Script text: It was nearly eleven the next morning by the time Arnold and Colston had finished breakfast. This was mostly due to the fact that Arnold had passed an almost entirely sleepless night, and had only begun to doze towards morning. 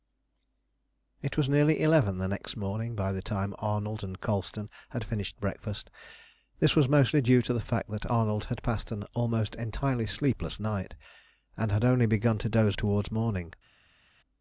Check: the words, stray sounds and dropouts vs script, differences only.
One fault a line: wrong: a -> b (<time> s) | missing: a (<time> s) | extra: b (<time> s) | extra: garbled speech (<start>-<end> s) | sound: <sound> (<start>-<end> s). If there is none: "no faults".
no faults